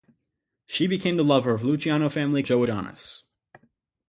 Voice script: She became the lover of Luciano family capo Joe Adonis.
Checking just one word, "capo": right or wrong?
wrong